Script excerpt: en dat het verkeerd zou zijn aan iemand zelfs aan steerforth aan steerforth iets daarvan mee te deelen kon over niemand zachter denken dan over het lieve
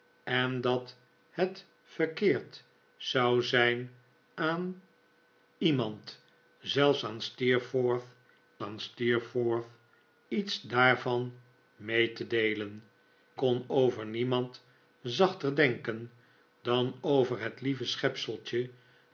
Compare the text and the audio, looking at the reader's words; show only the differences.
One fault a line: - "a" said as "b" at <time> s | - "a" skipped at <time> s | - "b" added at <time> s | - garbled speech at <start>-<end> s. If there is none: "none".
none